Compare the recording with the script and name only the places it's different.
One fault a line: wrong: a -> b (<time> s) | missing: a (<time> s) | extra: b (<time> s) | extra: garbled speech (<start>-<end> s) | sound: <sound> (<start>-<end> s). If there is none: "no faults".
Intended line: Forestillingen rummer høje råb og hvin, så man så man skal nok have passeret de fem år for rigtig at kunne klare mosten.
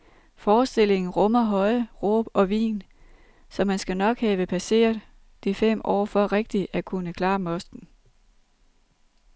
missing: så man (3.8 s)